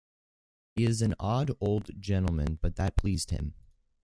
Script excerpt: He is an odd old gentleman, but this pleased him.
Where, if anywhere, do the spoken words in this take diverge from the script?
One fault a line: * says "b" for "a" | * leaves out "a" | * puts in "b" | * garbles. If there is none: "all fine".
* says "that" for "this"